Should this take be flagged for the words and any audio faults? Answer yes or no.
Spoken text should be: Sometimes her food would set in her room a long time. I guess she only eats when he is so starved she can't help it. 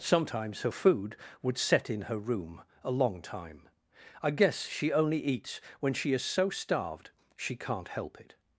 yes